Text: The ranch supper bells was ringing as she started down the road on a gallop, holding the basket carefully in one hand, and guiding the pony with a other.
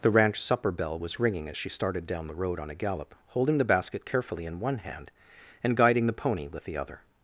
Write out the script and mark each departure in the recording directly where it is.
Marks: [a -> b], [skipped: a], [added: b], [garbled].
The ranch supper [bells -> bell] was ringing as she started down the road on a gallop, holding the basket carefully in one hand, and guiding the pony with [a -> the] other.